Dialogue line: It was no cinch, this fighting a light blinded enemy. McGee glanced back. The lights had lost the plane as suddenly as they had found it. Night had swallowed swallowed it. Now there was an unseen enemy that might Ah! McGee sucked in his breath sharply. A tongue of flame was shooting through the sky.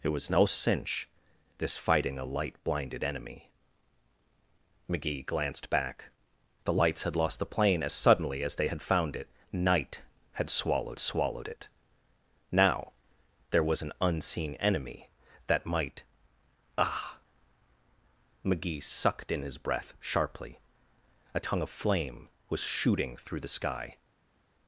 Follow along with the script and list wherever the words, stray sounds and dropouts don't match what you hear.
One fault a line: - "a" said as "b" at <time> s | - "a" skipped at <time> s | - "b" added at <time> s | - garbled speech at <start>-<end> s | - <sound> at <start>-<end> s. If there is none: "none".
none